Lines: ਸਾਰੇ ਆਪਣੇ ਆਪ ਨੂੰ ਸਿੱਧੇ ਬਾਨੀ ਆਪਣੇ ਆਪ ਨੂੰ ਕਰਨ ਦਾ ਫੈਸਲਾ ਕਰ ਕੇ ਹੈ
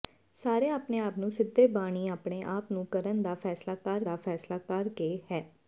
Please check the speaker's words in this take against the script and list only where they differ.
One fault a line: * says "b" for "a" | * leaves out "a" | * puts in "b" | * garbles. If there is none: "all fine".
* puts in "ਦਾ ਫੈਸਲਾ ਕਰ"